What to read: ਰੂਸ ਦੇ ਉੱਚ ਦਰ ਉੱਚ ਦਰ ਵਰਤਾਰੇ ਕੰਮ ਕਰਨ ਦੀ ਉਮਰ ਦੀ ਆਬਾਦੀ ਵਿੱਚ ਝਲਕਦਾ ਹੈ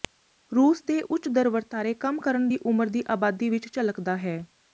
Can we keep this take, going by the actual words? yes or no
no